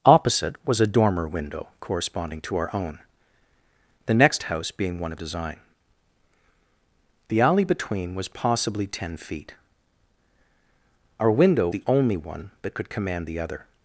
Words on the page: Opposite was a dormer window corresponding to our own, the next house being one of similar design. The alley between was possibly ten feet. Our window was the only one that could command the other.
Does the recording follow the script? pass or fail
fail